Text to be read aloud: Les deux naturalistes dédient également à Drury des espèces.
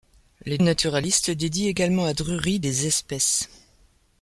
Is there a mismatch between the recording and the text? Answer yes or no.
yes